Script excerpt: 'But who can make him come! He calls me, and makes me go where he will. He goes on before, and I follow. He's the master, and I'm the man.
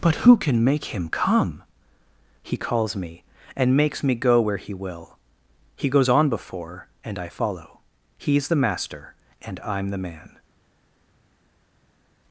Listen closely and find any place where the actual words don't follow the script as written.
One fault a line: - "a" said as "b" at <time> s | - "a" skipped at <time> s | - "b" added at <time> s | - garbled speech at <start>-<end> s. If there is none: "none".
none